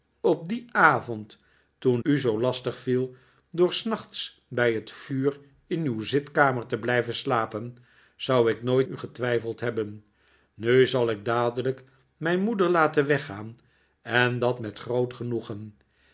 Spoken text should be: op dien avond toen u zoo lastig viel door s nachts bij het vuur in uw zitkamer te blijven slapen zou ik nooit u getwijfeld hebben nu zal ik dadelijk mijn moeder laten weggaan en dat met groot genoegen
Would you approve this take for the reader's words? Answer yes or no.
yes